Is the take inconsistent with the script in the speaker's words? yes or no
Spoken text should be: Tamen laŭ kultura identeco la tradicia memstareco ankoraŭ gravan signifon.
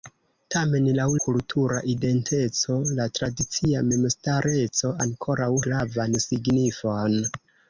no